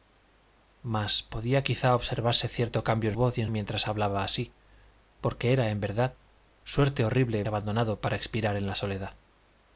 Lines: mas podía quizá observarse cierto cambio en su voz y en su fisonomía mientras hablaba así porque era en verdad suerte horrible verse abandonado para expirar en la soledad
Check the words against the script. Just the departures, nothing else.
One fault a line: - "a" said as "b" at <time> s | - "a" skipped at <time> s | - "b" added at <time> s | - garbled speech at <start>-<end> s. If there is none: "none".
- "su" skipped at 3.1 s
- "su fisonomía" skipped at 3.5 s
- "verse" skipped at 7.4 s